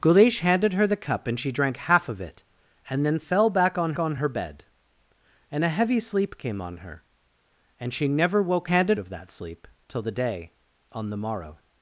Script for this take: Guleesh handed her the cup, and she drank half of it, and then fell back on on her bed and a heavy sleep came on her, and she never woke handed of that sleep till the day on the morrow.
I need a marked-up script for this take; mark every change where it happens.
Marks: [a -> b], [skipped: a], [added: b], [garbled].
Guleesh handed her the cup, and she drank half of it, and then fell back on on her bed and a heavy sleep came on her, and she never woke handed of that sleep till the day on the morrow.